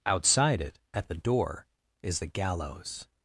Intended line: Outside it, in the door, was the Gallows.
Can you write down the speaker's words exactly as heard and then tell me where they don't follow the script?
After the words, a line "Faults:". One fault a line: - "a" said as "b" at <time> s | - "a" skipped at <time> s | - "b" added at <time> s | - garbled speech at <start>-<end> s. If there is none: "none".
Outside it, at the door, is the Gallows.
Faults:
- "in" said as "at" at 0.9 s
- "was" said as "is" at 2.0 s